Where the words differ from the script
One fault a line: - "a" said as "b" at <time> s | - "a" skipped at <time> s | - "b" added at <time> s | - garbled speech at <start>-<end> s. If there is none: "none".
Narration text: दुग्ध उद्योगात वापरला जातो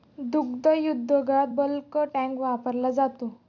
- "बल्क टँक" added at 1.6 s